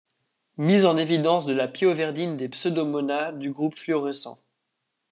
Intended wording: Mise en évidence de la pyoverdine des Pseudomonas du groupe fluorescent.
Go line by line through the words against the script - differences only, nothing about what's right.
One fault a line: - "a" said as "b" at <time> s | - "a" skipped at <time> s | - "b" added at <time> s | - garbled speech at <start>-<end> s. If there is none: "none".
none